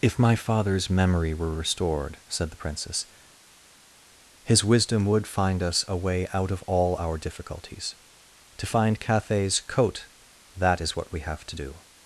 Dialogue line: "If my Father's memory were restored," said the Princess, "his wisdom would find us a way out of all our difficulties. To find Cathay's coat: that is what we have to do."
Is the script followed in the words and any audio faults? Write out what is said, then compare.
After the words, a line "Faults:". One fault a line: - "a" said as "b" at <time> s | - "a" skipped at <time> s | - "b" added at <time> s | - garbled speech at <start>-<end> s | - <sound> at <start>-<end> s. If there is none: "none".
"If my Father's memory were restored," said the Princess, "his wisdom would find us a way out of all our difficulties. To find Cathay's coat: that is what we have to do."
Faults:
none